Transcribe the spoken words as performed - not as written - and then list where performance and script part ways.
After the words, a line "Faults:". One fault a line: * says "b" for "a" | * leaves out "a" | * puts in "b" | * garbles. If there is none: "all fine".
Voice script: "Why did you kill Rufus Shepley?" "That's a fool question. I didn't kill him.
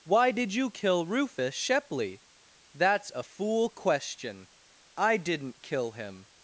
"Why did you kill Rufus Shepley?" "That's a fool question. I didn't kill him.
Faults:
all fine